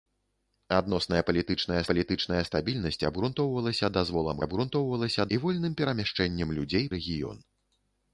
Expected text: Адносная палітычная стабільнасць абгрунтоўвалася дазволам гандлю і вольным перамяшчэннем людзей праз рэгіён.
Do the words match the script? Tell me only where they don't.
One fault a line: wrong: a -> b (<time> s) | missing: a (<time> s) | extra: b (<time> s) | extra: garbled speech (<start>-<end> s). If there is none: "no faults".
extra: палітычная (1.9 s)
wrong: гандлю -> абгрунтоўвалася (4.4 s)
missing: праз (6.8 s)